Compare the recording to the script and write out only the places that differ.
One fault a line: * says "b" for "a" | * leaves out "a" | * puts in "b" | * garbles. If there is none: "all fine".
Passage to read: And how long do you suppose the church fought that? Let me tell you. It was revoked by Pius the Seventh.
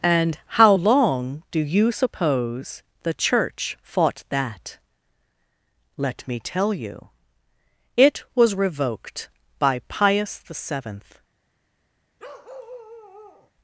all fine